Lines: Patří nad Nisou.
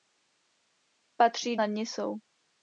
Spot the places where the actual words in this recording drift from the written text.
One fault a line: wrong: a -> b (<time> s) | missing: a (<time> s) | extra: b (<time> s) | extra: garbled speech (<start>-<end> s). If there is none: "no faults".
no faults